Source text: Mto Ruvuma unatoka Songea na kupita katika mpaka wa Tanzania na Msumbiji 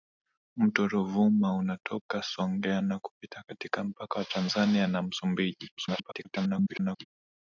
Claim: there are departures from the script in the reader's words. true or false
true